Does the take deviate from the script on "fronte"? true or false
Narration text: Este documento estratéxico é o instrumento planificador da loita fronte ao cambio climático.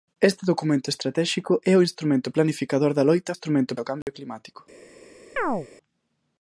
true